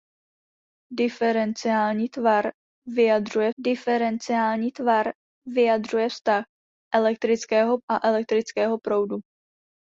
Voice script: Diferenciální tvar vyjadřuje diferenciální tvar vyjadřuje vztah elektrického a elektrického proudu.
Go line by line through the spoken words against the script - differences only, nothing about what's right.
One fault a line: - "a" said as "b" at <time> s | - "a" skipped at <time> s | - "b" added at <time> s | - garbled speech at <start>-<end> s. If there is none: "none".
none